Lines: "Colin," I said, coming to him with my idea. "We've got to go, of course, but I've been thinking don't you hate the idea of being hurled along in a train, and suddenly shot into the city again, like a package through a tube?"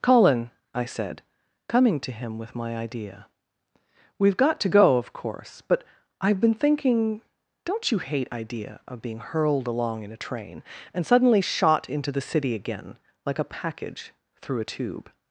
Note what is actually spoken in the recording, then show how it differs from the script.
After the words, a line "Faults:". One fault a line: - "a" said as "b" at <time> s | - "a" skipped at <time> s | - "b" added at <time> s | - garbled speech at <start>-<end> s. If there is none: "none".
"Colin," I said, coming to him with my idea. "We've got to go, of course, but I've been thinking don't you hate idea of being hurled along in a train, and suddenly shot into the city again, like a package through a tube?"
Faults:
- "the" skipped at 8.3 s